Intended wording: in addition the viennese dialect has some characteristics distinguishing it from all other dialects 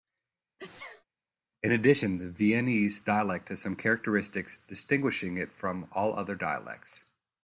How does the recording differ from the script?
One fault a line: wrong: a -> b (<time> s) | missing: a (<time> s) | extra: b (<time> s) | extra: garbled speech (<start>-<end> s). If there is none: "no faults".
no faults